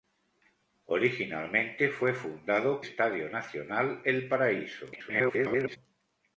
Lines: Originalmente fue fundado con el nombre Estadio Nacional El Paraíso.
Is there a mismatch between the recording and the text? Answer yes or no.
yes